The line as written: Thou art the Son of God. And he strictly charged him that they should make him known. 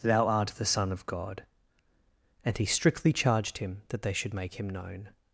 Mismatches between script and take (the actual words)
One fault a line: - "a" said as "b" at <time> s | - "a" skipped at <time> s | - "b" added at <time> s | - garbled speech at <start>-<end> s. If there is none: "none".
none